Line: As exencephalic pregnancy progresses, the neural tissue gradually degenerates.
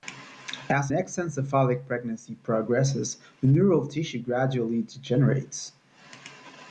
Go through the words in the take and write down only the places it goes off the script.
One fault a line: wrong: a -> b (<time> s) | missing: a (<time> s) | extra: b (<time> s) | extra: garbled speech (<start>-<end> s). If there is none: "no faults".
no faults